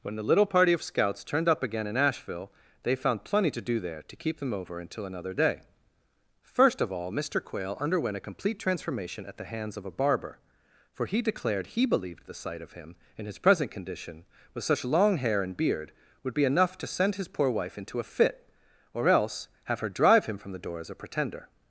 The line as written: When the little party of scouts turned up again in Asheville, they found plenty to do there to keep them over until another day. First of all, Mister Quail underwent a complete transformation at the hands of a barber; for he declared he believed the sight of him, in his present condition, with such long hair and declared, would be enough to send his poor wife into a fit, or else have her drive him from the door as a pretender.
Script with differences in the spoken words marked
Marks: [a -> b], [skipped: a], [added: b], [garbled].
When the little party of scouts turned up again in Asheville, they found plenty to do there to keep them over until another day. First of all, Mister Quail underwent a complete transformation at the hands of a barber; for he declared he believed the sight of him, in his present condition, with such long hair and [declared, -> beard] would be enough to send his poor wife into a fit, or else have her drive him from the door as a pretender.